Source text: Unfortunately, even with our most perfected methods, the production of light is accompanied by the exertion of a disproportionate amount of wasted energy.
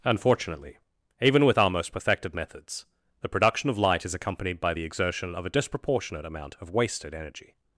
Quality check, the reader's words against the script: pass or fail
pass